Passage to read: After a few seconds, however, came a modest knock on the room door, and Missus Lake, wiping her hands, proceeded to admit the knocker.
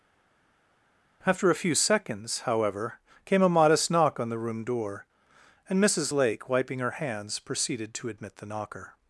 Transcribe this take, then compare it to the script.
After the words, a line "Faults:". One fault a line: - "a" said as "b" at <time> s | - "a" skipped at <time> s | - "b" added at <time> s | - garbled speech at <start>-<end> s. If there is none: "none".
After a few seconds, however, came a modest knock on the room door, and Missus Lake, wiping her hands, proceeded to admit the knocker.
Faults:
none